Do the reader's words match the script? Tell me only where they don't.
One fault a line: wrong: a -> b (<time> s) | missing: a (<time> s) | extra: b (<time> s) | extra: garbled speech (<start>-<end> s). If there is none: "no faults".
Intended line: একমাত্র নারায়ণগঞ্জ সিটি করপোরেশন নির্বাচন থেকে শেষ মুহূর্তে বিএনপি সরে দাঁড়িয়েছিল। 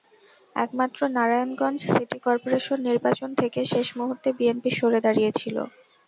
no faults